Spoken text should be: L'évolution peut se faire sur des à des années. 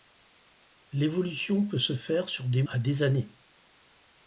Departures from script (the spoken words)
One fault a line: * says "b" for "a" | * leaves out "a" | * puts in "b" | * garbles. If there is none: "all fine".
all fine